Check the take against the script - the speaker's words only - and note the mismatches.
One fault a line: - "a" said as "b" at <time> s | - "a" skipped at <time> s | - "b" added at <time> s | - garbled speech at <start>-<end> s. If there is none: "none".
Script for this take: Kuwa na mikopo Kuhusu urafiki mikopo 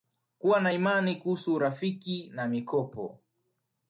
- "mikopo" said as "imani" at 0.7 s
- "na" added at 2.3 s